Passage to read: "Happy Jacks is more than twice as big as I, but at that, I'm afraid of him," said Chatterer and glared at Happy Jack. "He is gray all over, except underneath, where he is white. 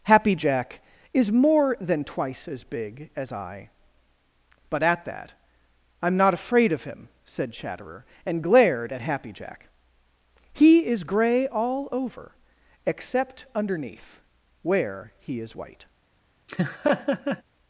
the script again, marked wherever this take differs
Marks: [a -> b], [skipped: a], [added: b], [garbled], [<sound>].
"Happy [Jacks -> Jack] is more than twice as big as I, but at that, I'm [added: not] afraid of him," said Chatterer and glared at Happy Jack. "He is gray all over, except underneath, where he is white. [laugh]